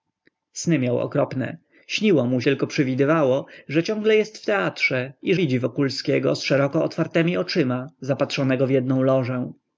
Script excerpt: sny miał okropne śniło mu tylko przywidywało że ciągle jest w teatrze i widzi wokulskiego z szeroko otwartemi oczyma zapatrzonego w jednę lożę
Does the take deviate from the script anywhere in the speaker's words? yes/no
no